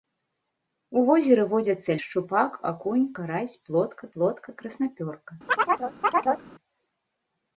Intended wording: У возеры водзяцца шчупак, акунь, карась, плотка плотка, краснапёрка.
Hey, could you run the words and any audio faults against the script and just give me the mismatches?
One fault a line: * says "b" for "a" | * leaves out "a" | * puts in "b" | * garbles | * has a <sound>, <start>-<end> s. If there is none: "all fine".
* has a chirp, 5.5-6.5 s